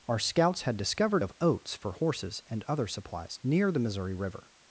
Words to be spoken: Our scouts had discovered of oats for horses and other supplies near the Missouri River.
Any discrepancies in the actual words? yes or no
no